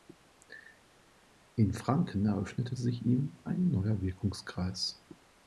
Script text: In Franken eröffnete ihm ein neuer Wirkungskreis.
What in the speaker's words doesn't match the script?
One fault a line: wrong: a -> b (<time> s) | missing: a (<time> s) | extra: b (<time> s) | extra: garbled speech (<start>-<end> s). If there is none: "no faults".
extra: sich (2.7 s)